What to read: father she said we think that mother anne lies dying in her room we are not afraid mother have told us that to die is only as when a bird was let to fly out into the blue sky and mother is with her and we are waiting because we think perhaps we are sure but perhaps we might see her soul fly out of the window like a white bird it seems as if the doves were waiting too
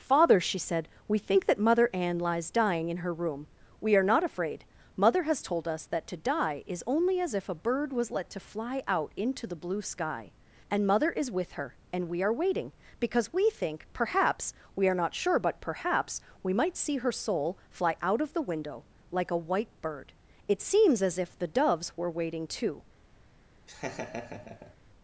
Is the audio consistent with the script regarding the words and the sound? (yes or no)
no